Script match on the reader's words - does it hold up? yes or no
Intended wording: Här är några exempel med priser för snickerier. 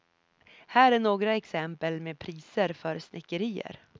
yes